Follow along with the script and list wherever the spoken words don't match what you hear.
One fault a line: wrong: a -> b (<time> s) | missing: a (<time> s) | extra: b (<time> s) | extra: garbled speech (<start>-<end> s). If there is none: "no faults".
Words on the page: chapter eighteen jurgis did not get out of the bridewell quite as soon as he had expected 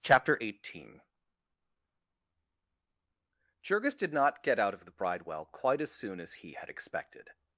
no faults